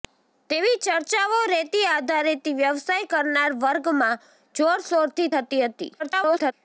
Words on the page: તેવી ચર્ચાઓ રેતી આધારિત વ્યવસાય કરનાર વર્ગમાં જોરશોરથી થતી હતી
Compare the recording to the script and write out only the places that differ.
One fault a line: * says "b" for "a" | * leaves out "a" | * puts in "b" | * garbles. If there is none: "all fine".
* garbles